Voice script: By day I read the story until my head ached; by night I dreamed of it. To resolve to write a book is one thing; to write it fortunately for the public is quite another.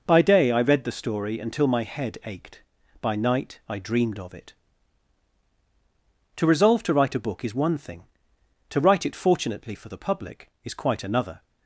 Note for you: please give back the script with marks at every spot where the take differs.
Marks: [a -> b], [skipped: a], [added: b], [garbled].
By day I read the story until my head ached; by night I dreamed of it. To resolve to write a book is one thing; to write it fortunately for the public is quite another.